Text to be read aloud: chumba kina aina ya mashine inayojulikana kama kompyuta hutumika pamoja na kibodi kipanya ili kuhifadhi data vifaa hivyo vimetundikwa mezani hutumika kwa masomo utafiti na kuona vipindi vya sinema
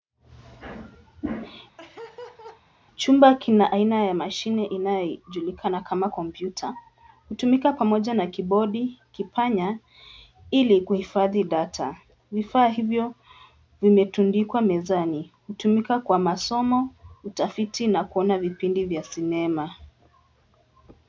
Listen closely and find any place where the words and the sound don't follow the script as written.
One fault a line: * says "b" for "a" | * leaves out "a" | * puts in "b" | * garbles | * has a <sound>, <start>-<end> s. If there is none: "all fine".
* has a laugh, 1.8-2.6 s